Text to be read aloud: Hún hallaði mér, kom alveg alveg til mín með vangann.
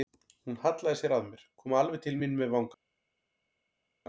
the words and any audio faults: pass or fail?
fail